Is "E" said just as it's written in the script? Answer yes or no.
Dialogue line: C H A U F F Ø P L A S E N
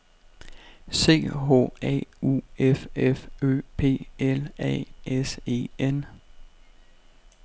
yes